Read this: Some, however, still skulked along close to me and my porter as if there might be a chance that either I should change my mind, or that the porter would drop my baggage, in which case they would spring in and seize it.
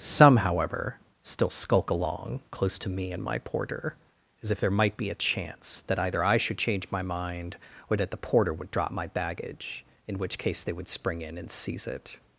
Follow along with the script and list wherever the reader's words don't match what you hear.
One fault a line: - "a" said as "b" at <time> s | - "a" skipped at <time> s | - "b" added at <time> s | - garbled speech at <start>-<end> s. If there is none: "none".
- "skulked" said as "skulk" at 1.5 s